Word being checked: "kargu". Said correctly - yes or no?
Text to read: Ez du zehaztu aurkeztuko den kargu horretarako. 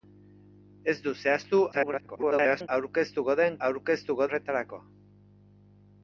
no